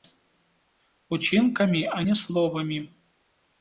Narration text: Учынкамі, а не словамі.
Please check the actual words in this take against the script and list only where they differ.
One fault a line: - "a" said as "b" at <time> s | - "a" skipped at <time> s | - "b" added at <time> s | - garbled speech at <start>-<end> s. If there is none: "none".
none